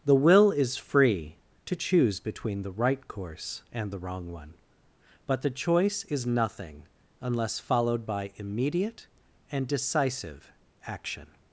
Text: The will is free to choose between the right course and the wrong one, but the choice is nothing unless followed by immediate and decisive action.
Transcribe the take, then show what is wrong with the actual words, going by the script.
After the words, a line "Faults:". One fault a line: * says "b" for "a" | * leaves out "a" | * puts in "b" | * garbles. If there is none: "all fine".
The will is free to choose between the right course and the wrong one, but the choice is nothing unless followed by immediate and decisive action.
Faults:
all fine